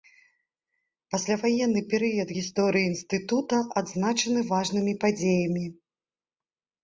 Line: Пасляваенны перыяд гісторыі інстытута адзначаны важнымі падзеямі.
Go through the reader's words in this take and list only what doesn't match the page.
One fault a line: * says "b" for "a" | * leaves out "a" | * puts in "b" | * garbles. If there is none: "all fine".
all fine